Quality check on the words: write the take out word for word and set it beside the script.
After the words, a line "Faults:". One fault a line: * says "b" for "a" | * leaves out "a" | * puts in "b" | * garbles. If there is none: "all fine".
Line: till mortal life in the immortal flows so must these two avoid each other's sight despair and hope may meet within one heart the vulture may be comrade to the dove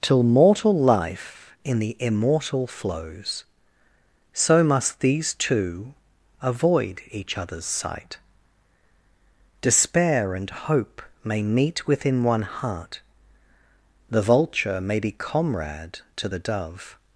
till mortal life in the immortal flows so must these two avoid each other's sight despair and hope may meet within one heart the vulture may be comrade to the dove
Faults:
all fine